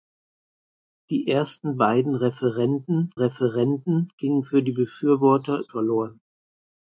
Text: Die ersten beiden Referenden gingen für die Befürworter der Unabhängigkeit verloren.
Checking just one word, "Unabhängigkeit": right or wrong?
wrong